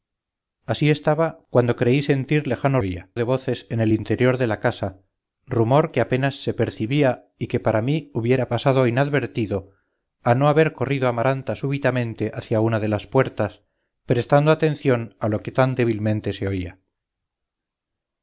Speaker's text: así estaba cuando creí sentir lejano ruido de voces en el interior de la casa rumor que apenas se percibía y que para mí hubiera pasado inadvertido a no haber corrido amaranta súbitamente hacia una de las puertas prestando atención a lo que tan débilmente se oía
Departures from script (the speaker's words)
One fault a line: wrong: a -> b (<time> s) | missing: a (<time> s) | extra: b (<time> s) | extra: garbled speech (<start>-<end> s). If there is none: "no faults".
wrong: ruido -> oía (2.8 s)